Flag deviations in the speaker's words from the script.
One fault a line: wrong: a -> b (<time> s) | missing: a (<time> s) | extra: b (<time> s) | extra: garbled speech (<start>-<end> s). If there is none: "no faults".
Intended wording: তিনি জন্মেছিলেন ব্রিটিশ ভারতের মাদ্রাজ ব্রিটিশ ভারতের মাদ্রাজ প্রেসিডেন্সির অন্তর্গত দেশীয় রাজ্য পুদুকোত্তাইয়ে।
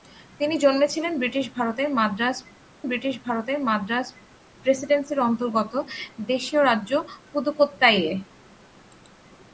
no faults